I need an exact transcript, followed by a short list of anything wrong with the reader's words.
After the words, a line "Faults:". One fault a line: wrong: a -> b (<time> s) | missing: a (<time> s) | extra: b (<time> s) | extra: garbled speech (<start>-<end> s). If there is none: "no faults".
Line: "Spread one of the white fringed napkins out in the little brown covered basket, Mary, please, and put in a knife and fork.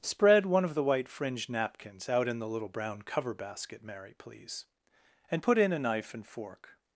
"Spread one of the white fringed napkins out in the little brown cover basket, Mary, please, and put in a knife and fork.
Faults:
wrong: covered -> cover (3.0 s)